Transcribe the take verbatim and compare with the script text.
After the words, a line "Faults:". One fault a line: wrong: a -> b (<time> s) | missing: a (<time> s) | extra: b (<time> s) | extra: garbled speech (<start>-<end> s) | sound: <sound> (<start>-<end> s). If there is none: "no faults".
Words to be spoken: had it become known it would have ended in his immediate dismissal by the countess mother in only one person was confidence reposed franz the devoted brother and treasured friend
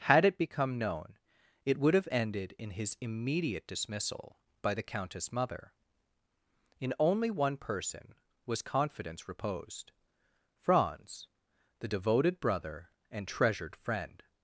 had it become known it would have ended in his immediate dismissal by the countess mother in only one person was confidence reposed franz the devoted brother and treasured friend
Faults:
no faults